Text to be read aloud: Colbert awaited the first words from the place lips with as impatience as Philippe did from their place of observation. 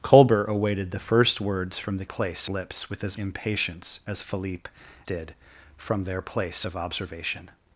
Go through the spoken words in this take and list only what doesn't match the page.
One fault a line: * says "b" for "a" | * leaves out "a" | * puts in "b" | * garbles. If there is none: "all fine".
all fine